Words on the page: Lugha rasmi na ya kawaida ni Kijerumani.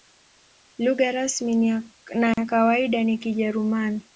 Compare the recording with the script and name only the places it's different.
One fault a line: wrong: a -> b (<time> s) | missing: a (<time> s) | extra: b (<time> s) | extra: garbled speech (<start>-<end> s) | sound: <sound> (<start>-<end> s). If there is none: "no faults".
sound: dropout (2.3-2.4 s)